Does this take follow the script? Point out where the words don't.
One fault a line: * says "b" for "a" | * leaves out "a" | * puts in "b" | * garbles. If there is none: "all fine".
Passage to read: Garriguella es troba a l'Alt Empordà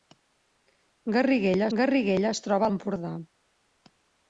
* puts in "garriguella"
* leaves out "l'Alt"